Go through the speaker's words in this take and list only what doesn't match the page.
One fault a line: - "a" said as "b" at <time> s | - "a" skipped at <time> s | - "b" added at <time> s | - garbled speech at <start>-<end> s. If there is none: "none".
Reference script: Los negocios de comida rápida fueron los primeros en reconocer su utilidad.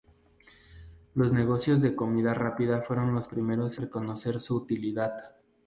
- "en" skipped at 3.8 s